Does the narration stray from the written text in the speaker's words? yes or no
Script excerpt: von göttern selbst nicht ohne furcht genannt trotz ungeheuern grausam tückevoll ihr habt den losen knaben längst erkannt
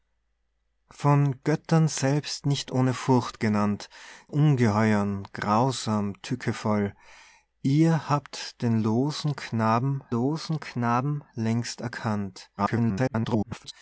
yes